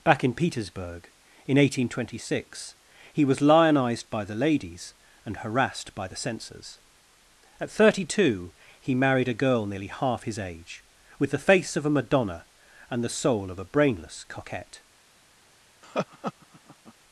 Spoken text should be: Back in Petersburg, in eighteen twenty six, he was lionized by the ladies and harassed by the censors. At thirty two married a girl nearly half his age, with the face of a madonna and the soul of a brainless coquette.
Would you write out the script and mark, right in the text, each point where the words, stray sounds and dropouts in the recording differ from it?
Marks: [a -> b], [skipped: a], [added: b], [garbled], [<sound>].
Back in Petersburg, in eighteen twenty six, he was lionized by the ladies and harassed by the censors. At thirty two [added: he] married a girl nearly half his age, with the face of a madonna and the soul of a brainless coquette. [laugh]